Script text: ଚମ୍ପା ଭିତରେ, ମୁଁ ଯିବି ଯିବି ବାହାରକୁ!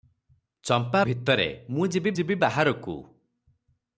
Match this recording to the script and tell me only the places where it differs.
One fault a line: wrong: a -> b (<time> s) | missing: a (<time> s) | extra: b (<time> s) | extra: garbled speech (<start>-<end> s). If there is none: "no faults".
no faults